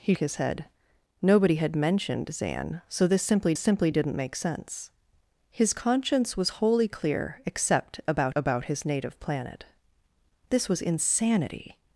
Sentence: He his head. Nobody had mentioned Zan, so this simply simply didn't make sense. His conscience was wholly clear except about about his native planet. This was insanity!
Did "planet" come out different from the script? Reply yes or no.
no